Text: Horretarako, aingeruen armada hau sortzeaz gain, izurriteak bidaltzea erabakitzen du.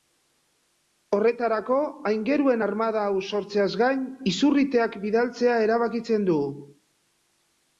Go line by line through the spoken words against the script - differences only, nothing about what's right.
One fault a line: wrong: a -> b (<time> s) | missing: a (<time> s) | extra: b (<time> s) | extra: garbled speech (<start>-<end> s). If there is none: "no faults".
no faults